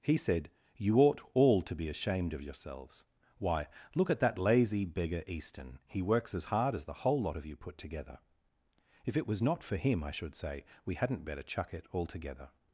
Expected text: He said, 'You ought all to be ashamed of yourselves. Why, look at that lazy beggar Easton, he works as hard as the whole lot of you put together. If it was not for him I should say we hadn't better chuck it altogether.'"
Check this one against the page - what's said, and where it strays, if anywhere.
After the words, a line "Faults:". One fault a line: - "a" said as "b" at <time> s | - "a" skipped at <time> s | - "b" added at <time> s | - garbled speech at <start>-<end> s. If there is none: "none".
He said, 'You ought all to be ashamed of yourselves. Why, look at that lazy beggar Easton, he works as hard as the whole lot of you put together. If it was not for him I should say we hadn't better chuck it altogether.'"
Faults:
none